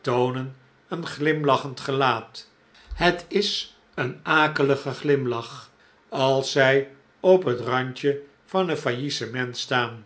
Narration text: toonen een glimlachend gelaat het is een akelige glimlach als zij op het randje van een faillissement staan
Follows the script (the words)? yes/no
yes